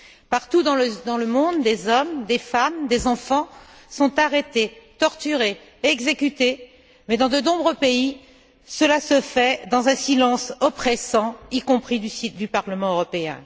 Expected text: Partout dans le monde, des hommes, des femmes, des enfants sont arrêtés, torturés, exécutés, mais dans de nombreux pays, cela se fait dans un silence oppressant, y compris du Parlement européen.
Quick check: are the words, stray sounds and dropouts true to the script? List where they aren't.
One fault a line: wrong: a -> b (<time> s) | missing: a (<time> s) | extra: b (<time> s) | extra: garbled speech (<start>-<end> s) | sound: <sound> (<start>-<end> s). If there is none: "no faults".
no faults